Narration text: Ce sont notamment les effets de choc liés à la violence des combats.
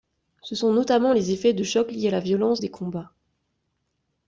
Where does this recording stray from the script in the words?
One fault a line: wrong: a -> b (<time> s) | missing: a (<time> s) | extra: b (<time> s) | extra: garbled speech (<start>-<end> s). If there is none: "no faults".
no faults